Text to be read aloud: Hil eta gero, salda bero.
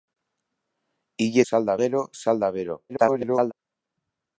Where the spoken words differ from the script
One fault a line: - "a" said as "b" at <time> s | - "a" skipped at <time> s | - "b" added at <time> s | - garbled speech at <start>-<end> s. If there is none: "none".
- "eta" said as "salda" at 1.5 s
- garbled speech at 2.9-3.5 s